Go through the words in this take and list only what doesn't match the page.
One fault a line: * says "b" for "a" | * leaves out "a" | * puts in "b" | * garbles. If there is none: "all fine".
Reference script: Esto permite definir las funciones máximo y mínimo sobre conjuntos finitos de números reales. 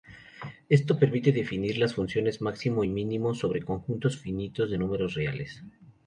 all fine